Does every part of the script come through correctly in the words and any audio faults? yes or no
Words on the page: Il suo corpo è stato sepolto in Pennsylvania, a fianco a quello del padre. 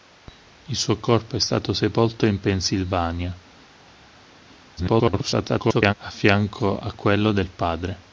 no